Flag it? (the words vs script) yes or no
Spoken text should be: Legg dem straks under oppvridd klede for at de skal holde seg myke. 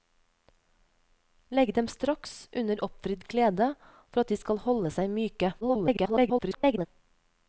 yes